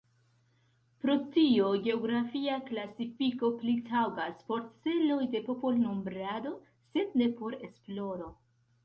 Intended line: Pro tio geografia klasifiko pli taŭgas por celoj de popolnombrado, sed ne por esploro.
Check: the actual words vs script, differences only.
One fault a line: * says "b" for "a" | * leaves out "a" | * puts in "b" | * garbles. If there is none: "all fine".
all fine